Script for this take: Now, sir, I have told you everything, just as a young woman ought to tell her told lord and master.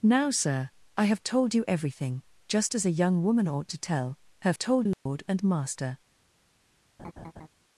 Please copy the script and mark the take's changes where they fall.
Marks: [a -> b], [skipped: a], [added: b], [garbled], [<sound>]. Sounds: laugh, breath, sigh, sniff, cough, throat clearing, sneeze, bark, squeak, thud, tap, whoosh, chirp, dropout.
Now, sir, I have told you everything, just as a young woman ought to tell her told lord [dropout] and master. [laugh]